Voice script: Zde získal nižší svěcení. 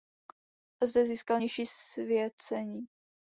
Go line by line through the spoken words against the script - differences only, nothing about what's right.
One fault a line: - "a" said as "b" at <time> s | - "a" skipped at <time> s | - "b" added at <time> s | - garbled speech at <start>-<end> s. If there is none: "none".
none